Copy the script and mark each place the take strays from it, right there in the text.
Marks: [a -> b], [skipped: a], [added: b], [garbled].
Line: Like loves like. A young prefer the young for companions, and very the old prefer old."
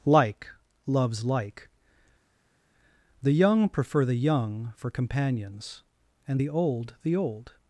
Like loves like. [A -> The] young prefer the young for companions, and [skipped: very] the old [prefer -> the] old."